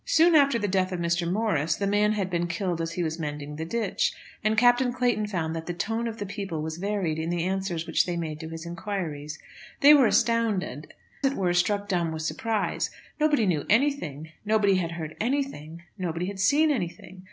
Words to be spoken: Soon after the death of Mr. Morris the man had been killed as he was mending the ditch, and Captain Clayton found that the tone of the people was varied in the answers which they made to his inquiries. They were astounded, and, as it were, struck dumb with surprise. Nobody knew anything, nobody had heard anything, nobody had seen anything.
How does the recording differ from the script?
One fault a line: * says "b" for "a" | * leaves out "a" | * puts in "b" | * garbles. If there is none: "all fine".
* leaves out "and as"